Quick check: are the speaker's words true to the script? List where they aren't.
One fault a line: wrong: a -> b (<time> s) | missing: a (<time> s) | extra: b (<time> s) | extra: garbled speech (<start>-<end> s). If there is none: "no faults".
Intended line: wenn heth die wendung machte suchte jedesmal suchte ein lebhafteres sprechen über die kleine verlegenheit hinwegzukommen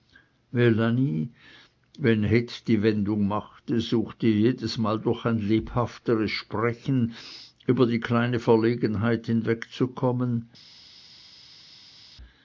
wrong: suchte -> durch (5.0 s)